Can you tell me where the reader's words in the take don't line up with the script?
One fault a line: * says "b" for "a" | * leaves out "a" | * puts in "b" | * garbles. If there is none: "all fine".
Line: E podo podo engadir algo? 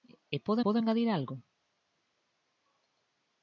all fine